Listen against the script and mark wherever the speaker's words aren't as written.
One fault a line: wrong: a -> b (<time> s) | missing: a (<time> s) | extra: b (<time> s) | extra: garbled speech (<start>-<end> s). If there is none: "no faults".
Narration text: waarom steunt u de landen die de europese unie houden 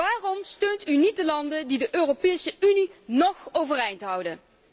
extra: niet (1.0 s)
extra: nog overeind (3.0 s)